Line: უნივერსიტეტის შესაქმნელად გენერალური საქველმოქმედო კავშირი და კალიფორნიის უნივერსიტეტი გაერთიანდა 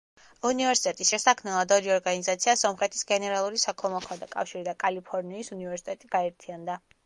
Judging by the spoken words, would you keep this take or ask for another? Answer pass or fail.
fail